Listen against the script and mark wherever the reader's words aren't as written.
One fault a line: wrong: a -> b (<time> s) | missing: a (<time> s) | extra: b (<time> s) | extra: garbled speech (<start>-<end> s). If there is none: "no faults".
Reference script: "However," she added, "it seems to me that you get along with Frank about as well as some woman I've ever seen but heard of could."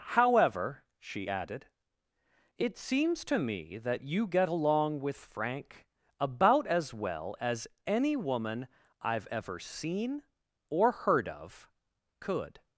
wrong: some -> any (7.8 s)
wrong: but -> or (10.7 s)